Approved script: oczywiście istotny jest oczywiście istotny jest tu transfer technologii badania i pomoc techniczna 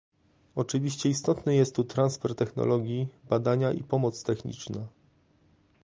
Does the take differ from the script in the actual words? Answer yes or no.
yes